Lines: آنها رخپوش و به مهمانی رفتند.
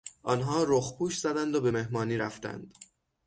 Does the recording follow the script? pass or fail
fail